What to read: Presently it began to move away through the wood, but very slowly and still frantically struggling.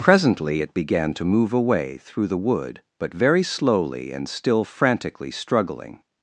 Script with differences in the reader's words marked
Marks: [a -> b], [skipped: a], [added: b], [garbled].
Presently it began to move away through the wood, but very slowly and still frantically struggling.